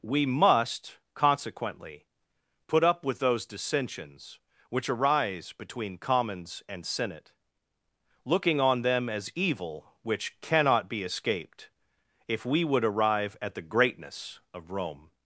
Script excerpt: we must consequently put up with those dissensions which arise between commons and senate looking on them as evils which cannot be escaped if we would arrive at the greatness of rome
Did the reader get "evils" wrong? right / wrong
wrong